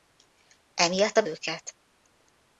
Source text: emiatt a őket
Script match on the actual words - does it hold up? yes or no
yes